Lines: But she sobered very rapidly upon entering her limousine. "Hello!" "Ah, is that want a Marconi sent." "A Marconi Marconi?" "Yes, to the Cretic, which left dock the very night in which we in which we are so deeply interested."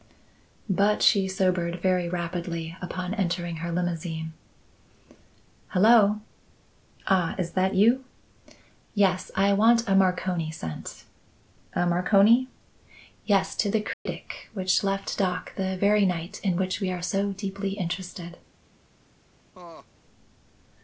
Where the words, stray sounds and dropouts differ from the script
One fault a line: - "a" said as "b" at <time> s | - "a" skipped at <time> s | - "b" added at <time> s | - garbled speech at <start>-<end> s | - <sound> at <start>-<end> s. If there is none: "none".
- "you Yes I" added at 7.8 s
- "Marconi" skipped at 12.5 s
- dropout at 13.9-14.1 s
- "in which we" skipped at 16.9 s
- laugh at 19.5-19.9 s